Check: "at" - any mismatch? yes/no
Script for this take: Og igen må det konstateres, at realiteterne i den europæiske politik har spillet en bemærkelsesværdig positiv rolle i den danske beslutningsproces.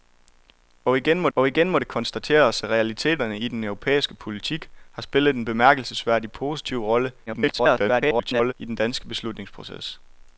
yes